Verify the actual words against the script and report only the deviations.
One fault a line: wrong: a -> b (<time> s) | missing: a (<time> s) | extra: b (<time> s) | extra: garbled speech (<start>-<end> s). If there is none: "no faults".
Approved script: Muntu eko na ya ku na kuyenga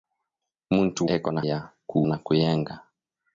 no faults